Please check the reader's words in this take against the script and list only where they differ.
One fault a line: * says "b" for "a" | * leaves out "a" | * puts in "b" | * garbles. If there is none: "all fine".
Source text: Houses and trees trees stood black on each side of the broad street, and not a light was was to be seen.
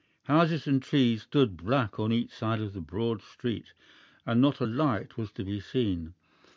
* leaves out "trees"
* leaves out "was"